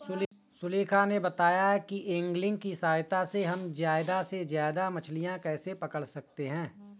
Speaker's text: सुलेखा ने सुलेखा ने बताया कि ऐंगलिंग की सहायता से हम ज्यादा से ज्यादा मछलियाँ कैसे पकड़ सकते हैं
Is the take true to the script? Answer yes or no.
no